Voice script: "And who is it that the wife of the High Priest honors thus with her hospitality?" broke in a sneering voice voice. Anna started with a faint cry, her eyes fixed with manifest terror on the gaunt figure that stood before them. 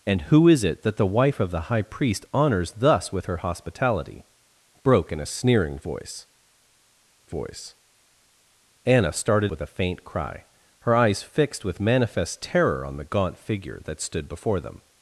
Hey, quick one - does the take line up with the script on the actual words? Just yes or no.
yes